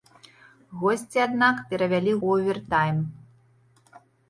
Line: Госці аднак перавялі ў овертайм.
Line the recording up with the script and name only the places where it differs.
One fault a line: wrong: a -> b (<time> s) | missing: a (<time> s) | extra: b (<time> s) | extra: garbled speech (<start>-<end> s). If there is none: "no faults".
no faults